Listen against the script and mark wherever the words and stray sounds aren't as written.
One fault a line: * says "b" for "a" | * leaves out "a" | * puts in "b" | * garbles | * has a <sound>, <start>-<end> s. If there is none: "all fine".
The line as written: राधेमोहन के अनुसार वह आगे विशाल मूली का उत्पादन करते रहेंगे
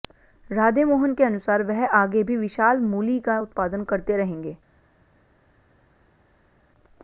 * puts in "भी"